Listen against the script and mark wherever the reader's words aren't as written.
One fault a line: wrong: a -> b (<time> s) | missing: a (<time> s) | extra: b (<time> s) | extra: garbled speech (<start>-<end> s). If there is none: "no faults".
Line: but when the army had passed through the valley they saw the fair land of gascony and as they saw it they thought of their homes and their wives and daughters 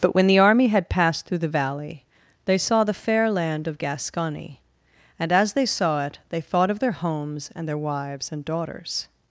no faults